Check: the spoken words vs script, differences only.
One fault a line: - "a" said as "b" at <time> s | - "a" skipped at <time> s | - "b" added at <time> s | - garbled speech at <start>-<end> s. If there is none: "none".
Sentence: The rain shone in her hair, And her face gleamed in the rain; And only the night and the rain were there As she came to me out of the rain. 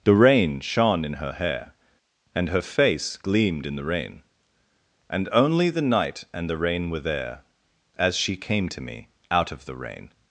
none